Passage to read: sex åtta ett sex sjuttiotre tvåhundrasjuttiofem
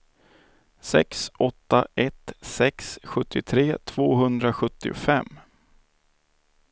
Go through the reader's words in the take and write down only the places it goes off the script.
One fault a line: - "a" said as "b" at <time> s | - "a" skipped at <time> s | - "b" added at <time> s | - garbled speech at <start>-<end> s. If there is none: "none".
none